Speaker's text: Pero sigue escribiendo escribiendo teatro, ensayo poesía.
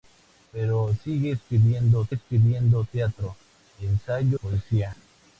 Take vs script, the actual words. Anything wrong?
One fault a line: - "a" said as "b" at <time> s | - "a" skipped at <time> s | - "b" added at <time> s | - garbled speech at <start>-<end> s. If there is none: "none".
none